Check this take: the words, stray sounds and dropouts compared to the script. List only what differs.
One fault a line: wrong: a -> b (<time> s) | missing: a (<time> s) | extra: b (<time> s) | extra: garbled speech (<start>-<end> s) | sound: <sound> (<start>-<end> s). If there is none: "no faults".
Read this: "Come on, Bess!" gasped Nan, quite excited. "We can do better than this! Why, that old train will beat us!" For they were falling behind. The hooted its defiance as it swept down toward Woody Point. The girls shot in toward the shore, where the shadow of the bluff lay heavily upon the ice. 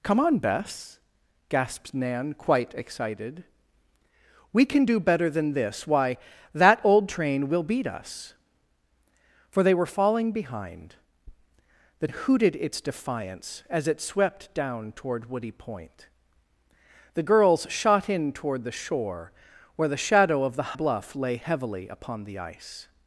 no faults